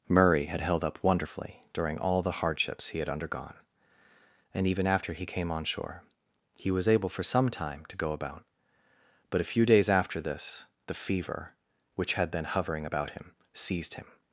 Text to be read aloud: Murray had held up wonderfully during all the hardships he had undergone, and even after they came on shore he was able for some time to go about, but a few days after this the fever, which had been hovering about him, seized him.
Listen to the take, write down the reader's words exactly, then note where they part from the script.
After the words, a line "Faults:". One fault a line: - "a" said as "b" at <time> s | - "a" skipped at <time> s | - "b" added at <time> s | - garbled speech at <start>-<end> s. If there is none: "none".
Murray had held up wonderfully during all the hardships he had undergone, and even after he came on shore he was able for some time to go about, but a few days after this the fever, which had been hovering about him, seized him.
Faults:
- "they" said as "he" at 5.1 s